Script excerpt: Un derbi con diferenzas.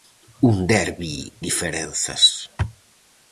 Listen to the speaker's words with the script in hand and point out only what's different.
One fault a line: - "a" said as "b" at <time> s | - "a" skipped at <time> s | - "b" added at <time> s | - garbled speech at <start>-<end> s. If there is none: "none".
- "con" skipped at 1.3 s